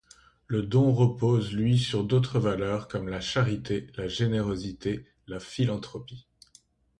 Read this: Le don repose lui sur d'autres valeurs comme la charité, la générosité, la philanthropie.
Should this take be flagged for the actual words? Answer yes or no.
no